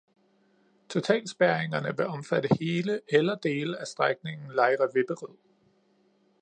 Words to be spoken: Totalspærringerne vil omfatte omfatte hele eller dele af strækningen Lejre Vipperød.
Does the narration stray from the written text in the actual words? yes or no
yes